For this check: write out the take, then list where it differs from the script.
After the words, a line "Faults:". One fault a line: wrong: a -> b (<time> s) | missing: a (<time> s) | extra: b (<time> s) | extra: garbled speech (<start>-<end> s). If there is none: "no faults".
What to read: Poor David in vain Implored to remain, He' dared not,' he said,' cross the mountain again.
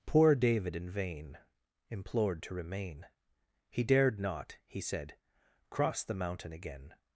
Poor David in vain Implored to remain, He' dared not,' he said,' cross the mountain again.
Faults:
no faults